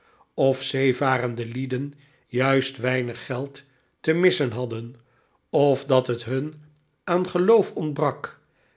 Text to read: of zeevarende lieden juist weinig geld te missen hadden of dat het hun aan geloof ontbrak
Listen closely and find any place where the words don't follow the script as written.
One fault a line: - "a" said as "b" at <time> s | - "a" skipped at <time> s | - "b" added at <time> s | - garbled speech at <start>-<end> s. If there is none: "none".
none